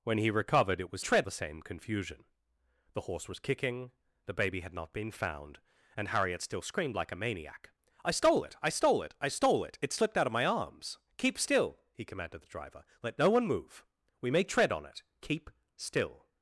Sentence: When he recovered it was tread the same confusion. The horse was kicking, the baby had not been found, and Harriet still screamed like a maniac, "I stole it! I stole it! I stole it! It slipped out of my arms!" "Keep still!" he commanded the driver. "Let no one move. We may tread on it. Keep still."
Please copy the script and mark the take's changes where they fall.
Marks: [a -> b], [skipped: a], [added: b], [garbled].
When he recovered it was tread the same confusion. The horse was kicking, the baby had not been found, and Harriet still screamed like a maniac, "I stole it! I stole it! I stole it! It slipped out of my arms!" "Keep still!" he commanded the driver. "Let no one move. We may tread on it. Keep still."